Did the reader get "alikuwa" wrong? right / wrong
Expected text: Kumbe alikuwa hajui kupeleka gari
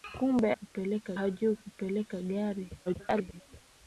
wrong